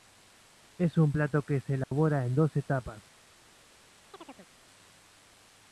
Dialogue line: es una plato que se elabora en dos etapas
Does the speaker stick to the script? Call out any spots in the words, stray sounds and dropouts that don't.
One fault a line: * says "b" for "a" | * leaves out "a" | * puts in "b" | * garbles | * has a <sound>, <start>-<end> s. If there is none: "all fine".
* says "un" for "una"
* has a dropout, 1.8-1.9 s
* has a chirp, 4.1-4.5 s